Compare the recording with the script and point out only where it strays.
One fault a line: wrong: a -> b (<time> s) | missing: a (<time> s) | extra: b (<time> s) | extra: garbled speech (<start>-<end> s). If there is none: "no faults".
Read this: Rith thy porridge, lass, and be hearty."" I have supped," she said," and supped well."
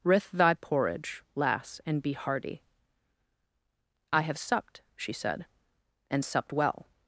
no faults